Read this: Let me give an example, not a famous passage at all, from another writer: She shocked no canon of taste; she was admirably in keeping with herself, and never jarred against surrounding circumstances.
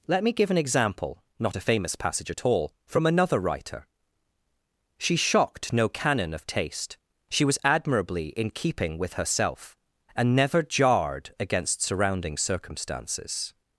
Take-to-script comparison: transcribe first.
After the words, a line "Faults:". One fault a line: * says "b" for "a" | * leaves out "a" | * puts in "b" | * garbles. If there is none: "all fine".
Let me give an example, not a famous passage at all, from another writer: She shocked no canon of taste; she was admirably in keeping with herself, and never jarred against surrounding circumstances.
Faults:
all fine